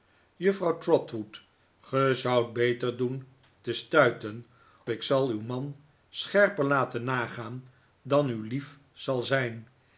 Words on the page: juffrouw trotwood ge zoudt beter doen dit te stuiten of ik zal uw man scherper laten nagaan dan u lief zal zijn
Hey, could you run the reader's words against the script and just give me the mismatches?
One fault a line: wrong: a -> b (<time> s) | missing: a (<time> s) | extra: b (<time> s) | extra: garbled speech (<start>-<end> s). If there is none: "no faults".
missing: dit (3.3 s)
missing: of (4.5 s)